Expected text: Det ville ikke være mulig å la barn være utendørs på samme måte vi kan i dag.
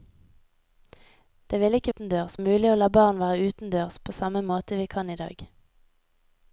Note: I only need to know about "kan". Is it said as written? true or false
true